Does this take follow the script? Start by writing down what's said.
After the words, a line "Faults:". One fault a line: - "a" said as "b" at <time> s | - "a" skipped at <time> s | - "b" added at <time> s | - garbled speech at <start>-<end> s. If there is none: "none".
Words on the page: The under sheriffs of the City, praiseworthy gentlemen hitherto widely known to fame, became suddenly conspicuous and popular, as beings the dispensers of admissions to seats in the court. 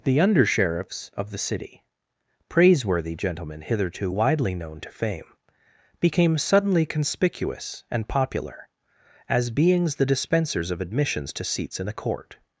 The under sheriffs of the City, praiseworthy gentlemen hitherto widely known to fame, became suddenly conspicuous and popular, as beings the dispensers of admissions to seats in the court.
Faults:
none